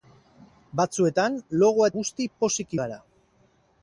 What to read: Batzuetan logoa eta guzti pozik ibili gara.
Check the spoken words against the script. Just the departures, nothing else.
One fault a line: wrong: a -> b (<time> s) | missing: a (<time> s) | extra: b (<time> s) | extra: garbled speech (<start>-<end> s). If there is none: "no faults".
missing: eta (1.9 s)
missing: ibili (2.8 s)